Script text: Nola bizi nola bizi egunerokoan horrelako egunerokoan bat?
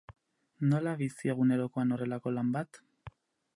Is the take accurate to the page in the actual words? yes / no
no